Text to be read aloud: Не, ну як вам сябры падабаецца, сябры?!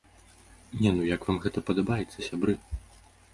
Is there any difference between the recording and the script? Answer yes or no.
yes